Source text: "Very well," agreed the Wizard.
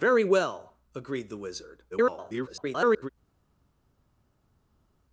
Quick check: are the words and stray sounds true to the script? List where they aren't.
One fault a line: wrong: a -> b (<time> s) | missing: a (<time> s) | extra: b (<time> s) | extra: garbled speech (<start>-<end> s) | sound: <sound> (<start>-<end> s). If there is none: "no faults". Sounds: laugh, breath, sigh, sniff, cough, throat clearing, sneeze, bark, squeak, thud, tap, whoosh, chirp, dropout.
extra: garbled speech (1.9-3.1 s)